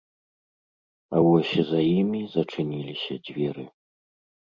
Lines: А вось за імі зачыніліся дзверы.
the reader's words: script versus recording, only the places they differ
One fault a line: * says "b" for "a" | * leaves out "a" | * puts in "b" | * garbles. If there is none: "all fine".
all fine